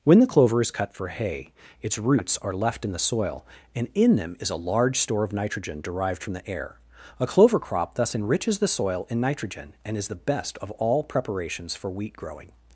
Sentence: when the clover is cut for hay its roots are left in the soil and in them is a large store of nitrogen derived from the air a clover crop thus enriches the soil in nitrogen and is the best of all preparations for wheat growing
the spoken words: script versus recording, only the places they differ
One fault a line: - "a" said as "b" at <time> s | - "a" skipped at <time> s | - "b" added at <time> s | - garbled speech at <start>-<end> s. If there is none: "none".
none